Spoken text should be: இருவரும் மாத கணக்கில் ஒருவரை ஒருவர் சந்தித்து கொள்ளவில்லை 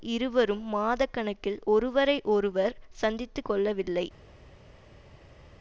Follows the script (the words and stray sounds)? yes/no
yes